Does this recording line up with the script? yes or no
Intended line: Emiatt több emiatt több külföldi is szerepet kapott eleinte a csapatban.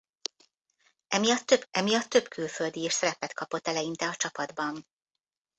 yes